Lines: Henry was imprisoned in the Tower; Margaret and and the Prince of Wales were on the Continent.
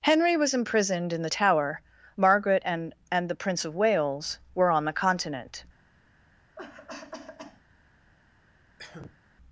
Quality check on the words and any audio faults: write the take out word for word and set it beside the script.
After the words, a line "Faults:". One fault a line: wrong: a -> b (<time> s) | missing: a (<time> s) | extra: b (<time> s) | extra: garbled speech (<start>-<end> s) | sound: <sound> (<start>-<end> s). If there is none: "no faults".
Henry was imprisoned in the Tower; Margaret and and the Prince of Wales were on the Continent.
Faults:
sound: cough (6.6-7.6 s)
sound: cough (8.8-9.2 s)